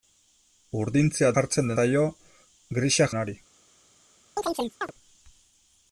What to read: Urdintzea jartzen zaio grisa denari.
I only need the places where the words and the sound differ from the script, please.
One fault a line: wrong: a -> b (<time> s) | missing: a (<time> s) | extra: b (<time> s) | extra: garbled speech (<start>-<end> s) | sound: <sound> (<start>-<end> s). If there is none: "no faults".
sound: chirp (4.4-4.9 s)